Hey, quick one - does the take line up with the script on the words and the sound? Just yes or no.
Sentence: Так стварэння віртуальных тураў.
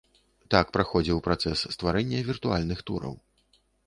no